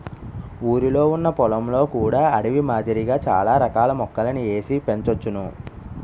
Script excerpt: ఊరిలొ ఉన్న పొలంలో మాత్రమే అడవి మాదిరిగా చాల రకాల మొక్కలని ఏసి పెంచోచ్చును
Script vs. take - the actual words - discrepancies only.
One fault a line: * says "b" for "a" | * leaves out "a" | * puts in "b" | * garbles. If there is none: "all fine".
* says "కూడా" for "మాత్రమే"